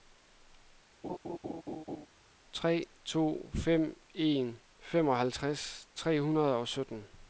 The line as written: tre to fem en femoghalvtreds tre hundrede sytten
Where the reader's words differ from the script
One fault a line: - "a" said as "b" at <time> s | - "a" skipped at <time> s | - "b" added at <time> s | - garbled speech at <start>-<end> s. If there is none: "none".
- "og" added at 6.5 s